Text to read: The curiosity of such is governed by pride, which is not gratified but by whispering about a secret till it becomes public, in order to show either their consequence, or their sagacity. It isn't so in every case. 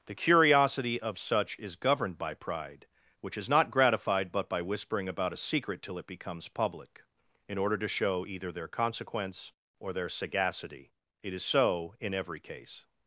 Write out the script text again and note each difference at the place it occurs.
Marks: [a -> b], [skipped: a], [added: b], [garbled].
The curiosity of such is governed by pride, which is not gratified but by whispering about a secret till it becomes public, in order to show either their consequence, or their sagacity. It [isn't -> is] so in every case.